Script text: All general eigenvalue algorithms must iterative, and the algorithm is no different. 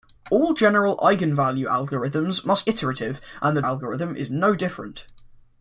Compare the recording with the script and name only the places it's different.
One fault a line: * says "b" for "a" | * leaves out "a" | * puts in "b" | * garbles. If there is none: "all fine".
all fine